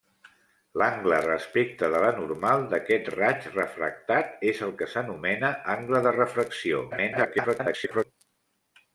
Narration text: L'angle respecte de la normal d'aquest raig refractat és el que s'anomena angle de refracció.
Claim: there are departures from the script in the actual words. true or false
true